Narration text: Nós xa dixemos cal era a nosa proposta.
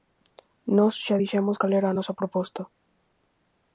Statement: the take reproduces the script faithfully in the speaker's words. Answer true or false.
true